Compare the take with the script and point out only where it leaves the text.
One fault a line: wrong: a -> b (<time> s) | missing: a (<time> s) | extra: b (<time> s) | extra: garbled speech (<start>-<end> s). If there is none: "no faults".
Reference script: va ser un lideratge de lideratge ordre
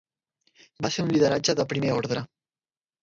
wrong: lideratge -> primer (1.7 s)